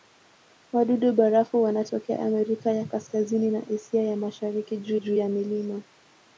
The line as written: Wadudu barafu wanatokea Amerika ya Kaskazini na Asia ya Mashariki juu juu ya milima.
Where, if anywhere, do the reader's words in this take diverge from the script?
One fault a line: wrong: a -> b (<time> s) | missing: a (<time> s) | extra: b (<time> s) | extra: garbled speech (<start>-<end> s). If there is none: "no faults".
no faults